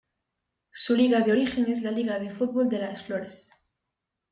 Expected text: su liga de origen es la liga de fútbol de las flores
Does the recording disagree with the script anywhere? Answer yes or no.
no